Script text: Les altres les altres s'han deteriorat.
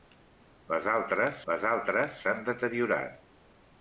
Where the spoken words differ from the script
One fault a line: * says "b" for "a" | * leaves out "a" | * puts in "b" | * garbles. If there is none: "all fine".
all fine